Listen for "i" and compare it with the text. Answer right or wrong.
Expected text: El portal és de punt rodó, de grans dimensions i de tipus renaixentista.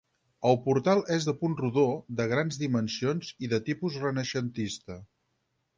right